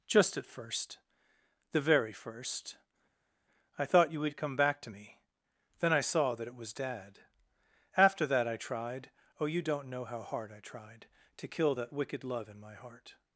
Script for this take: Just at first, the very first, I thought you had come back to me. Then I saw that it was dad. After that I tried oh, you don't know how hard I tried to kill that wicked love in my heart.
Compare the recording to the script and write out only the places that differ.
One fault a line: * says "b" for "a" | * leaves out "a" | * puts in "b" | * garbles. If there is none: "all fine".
* says "would" for "had"